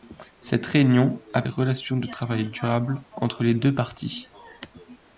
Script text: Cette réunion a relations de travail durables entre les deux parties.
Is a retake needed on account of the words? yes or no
no